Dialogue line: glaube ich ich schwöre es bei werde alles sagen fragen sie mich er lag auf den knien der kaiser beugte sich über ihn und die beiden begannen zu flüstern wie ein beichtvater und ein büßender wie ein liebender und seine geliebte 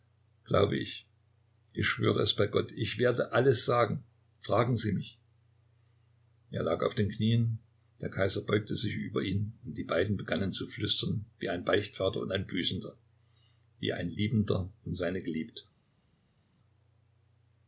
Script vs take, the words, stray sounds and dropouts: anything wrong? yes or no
yes